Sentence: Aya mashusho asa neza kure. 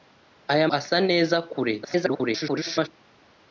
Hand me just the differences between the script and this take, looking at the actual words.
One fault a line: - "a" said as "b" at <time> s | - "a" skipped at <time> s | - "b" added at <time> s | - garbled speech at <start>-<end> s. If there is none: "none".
- "mashusho" skipped at 0.7 s
- garbled speech at 1.8-2.9 s